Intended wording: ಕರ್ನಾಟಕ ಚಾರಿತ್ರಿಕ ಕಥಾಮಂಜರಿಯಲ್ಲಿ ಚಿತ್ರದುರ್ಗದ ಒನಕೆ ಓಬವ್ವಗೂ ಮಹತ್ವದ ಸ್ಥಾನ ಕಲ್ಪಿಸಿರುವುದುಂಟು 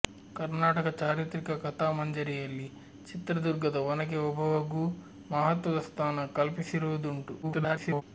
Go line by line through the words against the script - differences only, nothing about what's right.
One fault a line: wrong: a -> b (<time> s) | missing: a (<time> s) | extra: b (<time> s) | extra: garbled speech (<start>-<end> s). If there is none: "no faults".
extra: garbled speech (7.4-8.0 s)